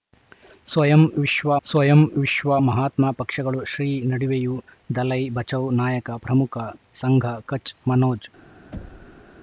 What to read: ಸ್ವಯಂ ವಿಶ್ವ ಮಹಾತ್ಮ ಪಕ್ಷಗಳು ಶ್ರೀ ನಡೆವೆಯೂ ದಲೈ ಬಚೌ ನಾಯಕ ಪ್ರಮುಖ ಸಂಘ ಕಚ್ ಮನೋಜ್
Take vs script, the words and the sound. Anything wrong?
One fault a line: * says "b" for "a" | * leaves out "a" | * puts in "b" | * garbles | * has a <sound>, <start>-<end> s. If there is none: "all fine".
* puts in "ಸ್ವಯಂ ವಿಶ್ವ"
* has a thud, 8.7-9.2 s